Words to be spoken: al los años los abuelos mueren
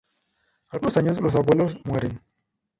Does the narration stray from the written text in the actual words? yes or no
no